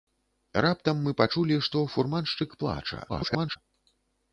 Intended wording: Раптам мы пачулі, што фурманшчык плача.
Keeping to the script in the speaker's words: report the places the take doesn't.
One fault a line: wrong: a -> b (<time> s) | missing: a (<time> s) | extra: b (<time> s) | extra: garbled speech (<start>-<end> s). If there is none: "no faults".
extra: garbled speech (3.1-3.6 s)